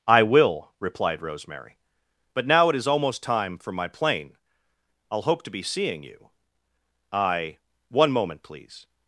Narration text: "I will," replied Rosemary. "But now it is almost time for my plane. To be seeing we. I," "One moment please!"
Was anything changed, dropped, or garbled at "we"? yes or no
yes